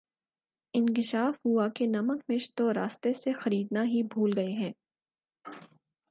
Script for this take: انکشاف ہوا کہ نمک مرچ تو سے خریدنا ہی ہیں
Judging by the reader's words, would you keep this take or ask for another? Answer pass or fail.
fail